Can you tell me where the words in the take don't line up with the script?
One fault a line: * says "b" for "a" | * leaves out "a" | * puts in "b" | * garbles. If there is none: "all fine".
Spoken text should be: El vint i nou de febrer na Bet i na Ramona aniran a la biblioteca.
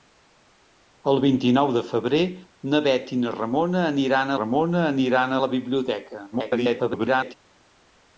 * puts in "Ramona aniran"
* garbles